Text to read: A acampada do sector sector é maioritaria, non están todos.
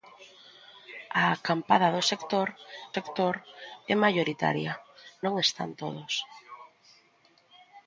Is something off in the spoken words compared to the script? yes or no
no